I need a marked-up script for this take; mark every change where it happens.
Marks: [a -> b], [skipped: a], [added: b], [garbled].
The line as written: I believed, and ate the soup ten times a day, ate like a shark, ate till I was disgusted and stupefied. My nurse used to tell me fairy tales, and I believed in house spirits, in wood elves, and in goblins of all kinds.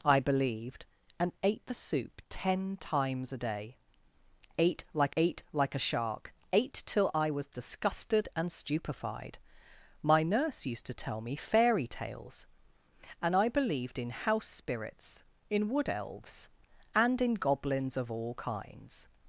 I believed, and ate the soup ten times a day, ate like [added: ate like] a shark, ate till I was disgusted and stupefied. My nurse used to tell me fairy tales, and I believed in house spirits, in wood elves, and in goblins of all kinds.